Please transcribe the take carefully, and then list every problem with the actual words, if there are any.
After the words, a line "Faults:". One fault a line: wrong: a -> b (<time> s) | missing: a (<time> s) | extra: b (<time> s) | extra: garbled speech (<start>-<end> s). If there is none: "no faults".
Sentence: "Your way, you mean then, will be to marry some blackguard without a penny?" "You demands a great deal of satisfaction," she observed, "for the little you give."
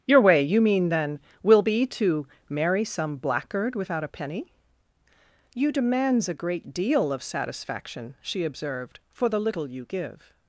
"Your way, you mean then, will be to marry some blackguard without a penny?" "You demands a great deal of satisfaction," she observed, "for the little you give."
Faults:
no faults